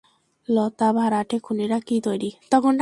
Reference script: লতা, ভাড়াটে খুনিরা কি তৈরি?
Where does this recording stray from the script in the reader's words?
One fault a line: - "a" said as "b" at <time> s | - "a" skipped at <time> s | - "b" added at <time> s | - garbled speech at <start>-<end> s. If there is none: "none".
none